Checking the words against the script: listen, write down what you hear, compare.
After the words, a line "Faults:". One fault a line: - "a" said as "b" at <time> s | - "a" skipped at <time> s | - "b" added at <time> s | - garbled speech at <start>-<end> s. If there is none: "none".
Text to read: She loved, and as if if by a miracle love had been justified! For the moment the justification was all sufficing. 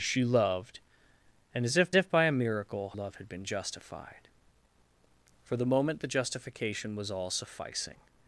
She loved, and as if if by a miracle love had been justified! For the moment the justification was all sufficing.
Faults:
none